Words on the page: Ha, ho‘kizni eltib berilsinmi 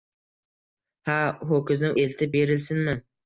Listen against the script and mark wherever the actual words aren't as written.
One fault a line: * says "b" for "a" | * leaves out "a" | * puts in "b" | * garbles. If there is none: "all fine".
all fine